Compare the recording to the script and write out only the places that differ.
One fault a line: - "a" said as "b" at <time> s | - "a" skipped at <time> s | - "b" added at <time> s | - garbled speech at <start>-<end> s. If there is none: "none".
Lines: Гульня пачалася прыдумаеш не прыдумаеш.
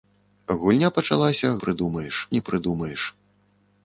none